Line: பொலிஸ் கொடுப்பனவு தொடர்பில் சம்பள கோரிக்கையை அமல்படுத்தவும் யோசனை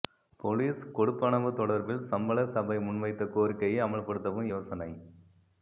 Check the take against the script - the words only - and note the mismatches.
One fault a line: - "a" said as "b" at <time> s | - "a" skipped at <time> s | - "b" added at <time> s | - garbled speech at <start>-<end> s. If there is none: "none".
- "சபை முன்வைத்த" added at 2.5 s